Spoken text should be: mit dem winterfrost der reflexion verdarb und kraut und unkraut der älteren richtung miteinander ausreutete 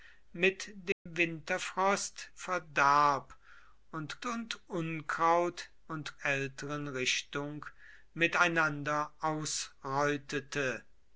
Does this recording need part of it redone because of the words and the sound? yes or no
yes